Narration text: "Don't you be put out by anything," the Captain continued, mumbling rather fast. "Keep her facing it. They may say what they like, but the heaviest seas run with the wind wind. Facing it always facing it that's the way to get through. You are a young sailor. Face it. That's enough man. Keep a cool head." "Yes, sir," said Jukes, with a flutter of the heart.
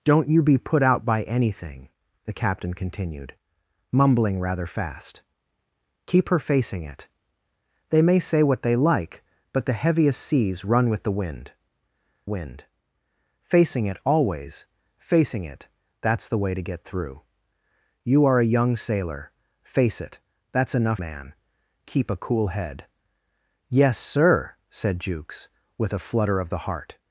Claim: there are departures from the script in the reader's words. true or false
false